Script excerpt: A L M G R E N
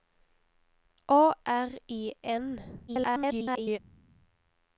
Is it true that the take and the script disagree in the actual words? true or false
true